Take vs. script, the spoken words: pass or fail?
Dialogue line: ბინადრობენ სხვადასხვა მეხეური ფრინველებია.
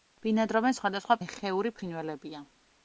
pass